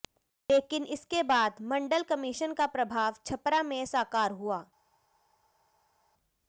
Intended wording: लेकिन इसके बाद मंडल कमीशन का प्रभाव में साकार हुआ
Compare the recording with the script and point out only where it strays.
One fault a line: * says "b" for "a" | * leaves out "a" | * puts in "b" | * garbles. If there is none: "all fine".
* puts in "छपरा"